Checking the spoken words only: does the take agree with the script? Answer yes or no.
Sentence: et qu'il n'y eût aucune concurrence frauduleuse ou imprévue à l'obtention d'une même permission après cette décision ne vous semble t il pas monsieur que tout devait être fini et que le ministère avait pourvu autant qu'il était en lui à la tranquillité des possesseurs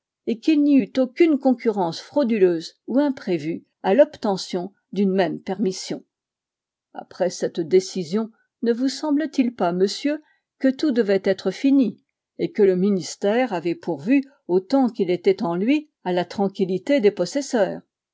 yes